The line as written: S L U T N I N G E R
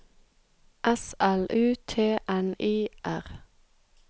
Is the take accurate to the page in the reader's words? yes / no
no